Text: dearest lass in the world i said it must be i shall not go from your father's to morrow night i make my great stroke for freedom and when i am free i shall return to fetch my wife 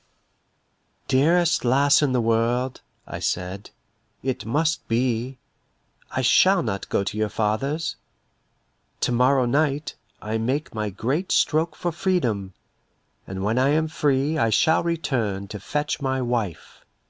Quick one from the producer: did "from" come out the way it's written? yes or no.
no